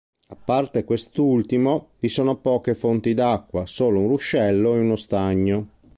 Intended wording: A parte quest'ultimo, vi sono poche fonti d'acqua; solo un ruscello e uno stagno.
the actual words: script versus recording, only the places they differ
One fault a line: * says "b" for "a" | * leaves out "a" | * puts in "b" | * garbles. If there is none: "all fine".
all fine